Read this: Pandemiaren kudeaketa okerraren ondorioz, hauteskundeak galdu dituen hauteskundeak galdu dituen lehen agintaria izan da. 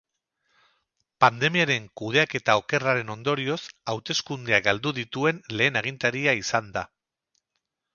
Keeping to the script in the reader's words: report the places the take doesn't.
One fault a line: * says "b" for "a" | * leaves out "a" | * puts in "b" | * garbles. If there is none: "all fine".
* leaves out "hauteskundeak galdu dituen"